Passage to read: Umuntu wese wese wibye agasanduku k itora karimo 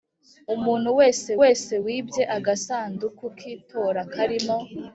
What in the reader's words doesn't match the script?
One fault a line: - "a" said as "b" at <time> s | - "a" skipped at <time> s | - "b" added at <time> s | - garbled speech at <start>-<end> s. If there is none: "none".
none